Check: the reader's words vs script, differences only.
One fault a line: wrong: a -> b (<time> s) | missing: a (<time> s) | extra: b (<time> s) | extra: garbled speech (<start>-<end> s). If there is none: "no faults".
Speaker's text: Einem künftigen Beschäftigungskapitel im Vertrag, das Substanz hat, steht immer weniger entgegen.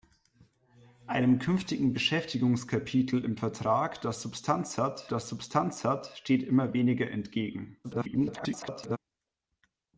extra: das Substanz hat (5.1 s)
extra: garbled speech (7.8-9.0 s)